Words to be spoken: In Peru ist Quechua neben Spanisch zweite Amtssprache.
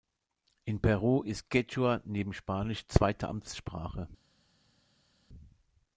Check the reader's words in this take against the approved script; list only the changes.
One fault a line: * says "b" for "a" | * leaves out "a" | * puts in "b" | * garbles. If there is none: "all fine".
all fine